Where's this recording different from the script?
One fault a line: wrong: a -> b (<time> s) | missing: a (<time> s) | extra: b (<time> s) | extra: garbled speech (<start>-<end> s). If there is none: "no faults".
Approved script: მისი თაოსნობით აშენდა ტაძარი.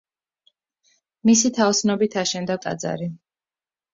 no faults